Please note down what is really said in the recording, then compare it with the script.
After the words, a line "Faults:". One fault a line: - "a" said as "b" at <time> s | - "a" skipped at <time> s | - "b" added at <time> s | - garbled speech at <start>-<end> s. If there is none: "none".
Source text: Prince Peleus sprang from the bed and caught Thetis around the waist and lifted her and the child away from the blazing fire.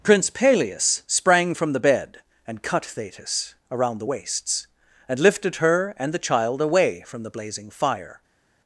Prince Peleus sprang from the bed and cut Thetis around the waists and lifted her and the child away from the blazing fire.
Faults:
- "caught" said as "cut" at 2.6 s
- "waist" said as "waists" at 4.0 s